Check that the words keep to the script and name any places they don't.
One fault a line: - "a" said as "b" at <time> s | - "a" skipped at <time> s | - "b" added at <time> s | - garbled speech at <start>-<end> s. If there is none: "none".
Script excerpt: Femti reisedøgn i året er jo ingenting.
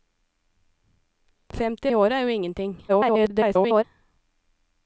- "reisedøgn" skipped at 1.9 s
- garbled speech at 2.9-3.8 s